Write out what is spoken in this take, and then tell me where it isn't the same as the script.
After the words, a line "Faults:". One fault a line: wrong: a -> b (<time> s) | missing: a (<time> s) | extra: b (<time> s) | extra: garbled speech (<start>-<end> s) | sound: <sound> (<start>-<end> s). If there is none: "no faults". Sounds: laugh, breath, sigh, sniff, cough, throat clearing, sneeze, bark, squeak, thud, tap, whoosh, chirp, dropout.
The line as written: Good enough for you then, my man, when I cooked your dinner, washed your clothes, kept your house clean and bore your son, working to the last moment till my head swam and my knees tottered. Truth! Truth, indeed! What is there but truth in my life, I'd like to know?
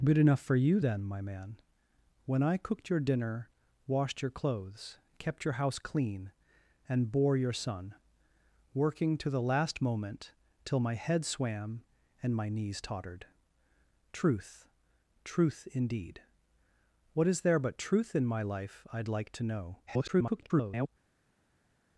Good enough for you then, my man, when I cooked your dinner, washed your clothes, kept your house clean and bore your son, working to the last moment till my head swam and my knees tottered. Truth! Truth, indeed! What is there but truth in my life, I'd like to know? [garbled]
Faults:
extra: garbled speech (19.9-20.9 s)